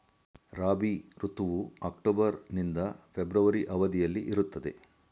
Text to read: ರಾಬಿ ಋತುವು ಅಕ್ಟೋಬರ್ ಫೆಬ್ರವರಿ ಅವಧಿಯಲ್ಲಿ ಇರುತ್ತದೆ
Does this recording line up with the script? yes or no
no